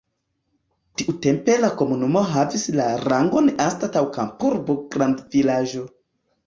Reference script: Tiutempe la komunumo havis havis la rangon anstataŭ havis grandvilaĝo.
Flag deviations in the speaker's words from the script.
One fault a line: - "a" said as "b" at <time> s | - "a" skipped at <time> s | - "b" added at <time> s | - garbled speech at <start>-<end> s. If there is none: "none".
- "havis" skipped at 2.6 s
- "havis" said as "kampurbo" at 4.2 s